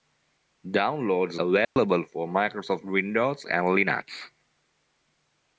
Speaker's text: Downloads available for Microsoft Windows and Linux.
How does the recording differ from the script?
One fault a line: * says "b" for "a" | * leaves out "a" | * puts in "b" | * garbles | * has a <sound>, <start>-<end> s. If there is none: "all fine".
* has a dropout, 1.6-1.8 s